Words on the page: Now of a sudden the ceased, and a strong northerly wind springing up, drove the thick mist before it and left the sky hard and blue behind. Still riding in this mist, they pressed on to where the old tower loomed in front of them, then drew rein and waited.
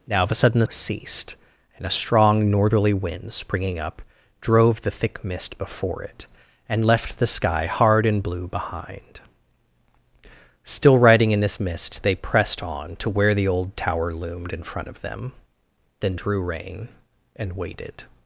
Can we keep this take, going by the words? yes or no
yes